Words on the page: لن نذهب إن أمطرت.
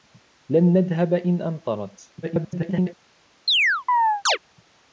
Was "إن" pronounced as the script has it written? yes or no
yes